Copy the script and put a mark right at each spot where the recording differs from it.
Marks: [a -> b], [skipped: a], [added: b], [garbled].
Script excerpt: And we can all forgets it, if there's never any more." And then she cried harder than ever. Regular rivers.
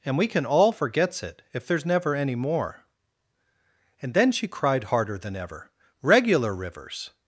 And we can all forgets it, if there's never any more." And then she cried harder than ever. Regular rivers.